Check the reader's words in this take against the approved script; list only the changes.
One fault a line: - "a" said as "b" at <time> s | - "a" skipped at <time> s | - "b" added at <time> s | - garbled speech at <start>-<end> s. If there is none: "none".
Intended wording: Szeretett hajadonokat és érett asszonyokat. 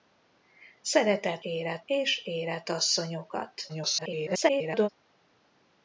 - "hajadonokat" said as "érett" at 1.4 s
- garbled speech at 3.7-4.9 s